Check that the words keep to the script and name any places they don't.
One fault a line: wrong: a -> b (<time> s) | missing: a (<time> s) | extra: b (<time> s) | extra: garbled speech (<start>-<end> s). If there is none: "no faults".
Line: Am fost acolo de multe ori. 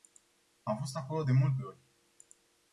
no faults